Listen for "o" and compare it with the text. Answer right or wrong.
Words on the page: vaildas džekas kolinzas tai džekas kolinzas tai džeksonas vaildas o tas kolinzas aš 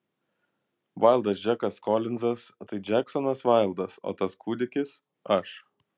right